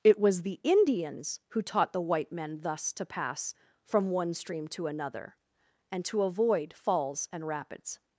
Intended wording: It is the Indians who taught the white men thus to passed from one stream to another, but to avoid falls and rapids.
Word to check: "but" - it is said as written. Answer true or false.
false